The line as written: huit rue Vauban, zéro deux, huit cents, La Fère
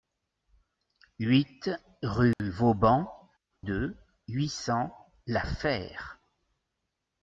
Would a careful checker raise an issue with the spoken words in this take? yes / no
yes